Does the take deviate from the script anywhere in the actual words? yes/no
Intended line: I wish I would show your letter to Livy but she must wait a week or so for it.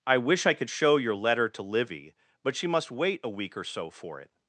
yes